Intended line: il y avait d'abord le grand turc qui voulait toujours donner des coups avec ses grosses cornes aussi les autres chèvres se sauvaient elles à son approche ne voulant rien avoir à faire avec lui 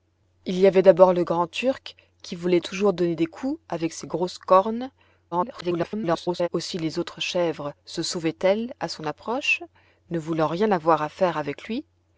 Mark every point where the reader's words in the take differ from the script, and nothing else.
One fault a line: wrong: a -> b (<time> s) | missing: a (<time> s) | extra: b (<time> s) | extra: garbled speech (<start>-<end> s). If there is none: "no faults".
extra: garbled speech (5.3-6.5 s)